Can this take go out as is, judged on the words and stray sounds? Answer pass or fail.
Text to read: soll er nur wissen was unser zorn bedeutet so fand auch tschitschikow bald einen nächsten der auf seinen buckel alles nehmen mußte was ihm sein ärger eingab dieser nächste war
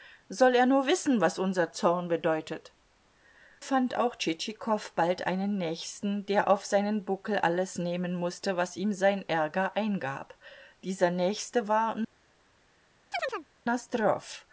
fail